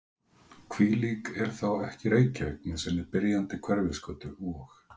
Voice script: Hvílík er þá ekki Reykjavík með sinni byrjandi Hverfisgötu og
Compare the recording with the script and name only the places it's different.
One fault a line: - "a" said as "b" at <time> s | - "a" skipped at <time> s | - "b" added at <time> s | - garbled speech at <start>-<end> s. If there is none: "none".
none